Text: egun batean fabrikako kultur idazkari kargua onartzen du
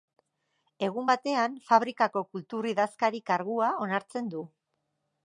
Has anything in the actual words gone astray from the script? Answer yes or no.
no